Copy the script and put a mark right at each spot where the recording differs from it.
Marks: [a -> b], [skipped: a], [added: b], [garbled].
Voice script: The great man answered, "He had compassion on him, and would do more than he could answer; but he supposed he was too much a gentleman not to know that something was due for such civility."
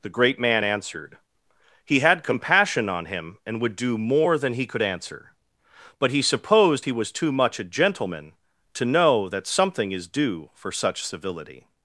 The great man answered, "He had compassion on him, and would do more than he could answer; but he supposed he was too much a gentleman [skipped: not] to know that something [was -> is] due for such civility."